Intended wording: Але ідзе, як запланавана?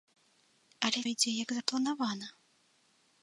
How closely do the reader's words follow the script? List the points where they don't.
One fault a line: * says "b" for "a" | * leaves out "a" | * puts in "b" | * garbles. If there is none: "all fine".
all fine